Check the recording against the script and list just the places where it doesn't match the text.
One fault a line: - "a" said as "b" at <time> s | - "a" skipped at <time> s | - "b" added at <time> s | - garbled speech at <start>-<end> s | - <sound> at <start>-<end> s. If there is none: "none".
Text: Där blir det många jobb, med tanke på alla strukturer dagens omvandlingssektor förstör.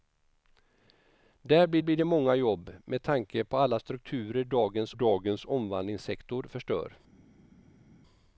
- "blir" added at 1.8 s
- "dagens" added at 4.9 s